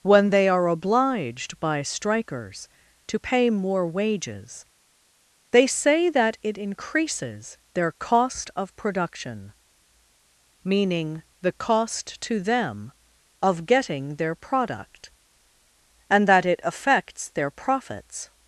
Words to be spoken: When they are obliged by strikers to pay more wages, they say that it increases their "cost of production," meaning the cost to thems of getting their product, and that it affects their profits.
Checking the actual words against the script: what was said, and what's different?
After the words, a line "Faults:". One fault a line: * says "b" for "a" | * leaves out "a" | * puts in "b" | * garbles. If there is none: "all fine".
When they are obliged by strikers to pay more wages, they say that it increases their "cost of production," meaning the cost to them of getting their product, and that it affects their profits.
Faults:
* says "them" for "thems"